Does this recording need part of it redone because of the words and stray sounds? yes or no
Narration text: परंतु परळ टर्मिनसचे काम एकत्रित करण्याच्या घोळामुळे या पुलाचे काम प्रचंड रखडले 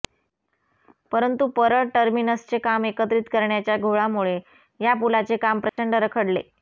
yes